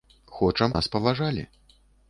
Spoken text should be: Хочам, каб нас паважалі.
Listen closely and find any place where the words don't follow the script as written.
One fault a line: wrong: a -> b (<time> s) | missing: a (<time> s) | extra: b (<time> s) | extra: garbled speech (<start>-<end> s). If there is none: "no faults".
missing: каб (0.7 s)